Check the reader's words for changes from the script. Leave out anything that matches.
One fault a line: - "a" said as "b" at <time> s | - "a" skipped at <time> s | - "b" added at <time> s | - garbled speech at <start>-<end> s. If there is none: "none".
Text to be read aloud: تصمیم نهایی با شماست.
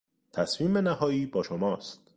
none